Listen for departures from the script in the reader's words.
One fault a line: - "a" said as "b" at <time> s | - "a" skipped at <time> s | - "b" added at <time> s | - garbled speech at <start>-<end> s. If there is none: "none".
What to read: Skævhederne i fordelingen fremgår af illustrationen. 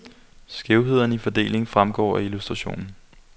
none